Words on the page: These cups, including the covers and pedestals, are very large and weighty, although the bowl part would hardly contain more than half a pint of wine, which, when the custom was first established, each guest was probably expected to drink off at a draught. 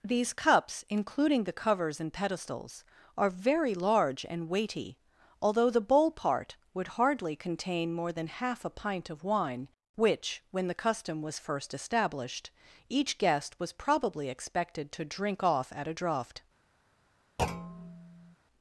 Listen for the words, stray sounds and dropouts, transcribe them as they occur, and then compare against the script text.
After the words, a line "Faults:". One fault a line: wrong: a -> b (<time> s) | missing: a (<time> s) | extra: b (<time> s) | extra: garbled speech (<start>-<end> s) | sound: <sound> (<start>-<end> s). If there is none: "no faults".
These cups, including the covers and pedestals, are very large and weighty, although the bowl part would hardly contain more than half a pint of wine, which, when the custom was first established, each guest was probably expected to drink off at a draught.
Faults:
sound: thud (17.4-18.4 s)